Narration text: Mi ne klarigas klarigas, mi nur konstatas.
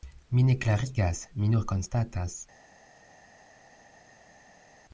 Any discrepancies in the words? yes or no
yes